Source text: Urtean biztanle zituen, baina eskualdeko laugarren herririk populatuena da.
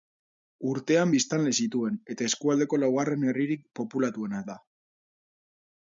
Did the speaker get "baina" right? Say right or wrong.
wrong